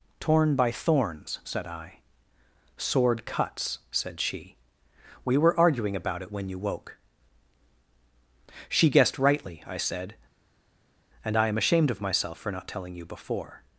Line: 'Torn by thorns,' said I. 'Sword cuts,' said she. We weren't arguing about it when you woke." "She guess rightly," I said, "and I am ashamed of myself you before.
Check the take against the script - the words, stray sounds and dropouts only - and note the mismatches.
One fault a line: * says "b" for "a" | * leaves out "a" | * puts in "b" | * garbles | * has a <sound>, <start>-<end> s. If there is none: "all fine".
* says "were" for "weren't"
* says "guessed" for "guess"
* puts in "for not telling"